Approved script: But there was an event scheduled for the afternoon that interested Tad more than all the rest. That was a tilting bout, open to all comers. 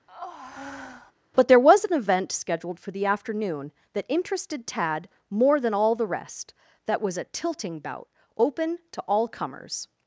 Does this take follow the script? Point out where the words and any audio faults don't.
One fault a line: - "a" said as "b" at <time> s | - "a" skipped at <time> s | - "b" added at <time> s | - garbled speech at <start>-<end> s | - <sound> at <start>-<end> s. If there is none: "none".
- breath at 0.1-1.1 s